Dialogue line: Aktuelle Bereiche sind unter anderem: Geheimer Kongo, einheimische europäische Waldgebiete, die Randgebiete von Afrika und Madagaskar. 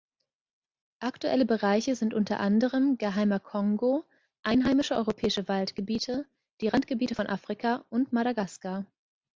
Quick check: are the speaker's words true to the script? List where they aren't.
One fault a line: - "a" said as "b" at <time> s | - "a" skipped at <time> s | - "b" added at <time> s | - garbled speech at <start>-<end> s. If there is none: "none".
none